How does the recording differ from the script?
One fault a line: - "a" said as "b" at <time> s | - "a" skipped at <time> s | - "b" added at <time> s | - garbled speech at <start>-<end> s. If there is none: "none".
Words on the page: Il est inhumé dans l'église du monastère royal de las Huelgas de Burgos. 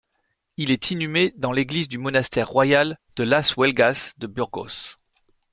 none